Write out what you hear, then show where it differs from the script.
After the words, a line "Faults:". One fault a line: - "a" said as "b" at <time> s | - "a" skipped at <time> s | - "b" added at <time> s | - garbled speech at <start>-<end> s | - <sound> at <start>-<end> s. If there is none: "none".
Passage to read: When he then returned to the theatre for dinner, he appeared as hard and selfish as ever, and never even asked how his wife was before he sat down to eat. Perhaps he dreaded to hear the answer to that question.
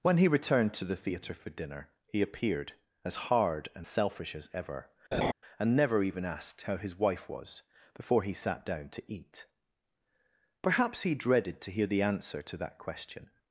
When he returned to the theatre for dinner, he appeared as hard and selfish as ever, and never even asked how his wife was before he sat down to eat. Perhaps he dreaded to hear the answer to that question.
Faults:
- "then" skipped at 0.3 s
- laugh at 5.1-5.3 s